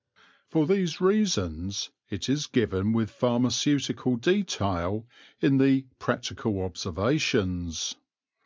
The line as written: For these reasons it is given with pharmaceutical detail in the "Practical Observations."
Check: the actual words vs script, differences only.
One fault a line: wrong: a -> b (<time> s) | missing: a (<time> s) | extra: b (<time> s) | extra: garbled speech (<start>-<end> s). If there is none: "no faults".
no faults